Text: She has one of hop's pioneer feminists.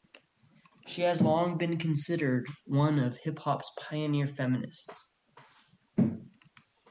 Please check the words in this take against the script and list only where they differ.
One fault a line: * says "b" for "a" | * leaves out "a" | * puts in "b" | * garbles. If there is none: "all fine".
* puts in "long been considered"
* puts in "hip"